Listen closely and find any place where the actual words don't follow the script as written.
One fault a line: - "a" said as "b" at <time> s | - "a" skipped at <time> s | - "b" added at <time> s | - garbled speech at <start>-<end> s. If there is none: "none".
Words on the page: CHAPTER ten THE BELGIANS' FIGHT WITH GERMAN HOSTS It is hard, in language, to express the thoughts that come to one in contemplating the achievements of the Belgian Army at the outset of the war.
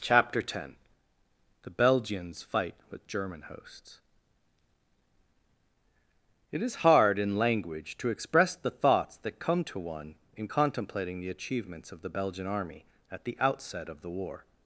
none